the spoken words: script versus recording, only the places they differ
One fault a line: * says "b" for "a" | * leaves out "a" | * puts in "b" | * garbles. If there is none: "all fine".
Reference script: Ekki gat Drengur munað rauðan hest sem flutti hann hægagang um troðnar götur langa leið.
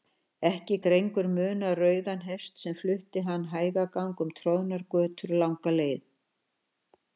* leaves out "gat"